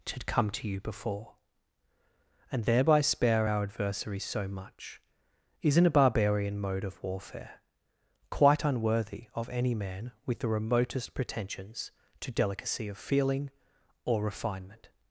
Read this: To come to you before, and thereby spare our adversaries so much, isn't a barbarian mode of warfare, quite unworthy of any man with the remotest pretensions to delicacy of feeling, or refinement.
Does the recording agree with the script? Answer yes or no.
yes